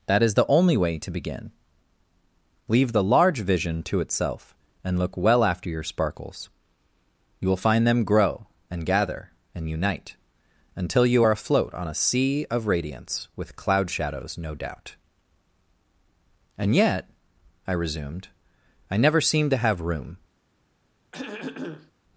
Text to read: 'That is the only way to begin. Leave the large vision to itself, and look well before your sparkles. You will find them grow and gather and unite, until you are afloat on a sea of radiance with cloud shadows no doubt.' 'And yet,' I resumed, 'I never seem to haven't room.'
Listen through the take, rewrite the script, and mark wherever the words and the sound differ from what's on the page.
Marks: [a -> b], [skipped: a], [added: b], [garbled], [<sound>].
'That is the only way to begin. Leave the large vision to itself, and look well [before -> after] your sparkles. You will find them grow and gather and unite, until you are afloat on a sea of radiance with cloud shadows no doubt.' 'And yet,' I resumed, 'I never seem to [haven't -> have] room.' [throat clearing]